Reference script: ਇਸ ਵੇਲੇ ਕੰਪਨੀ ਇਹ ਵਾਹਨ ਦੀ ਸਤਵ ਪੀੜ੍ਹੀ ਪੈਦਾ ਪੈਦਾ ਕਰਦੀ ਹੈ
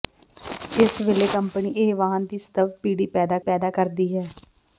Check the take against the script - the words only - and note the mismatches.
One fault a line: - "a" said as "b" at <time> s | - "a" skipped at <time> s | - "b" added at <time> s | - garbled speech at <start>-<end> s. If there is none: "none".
none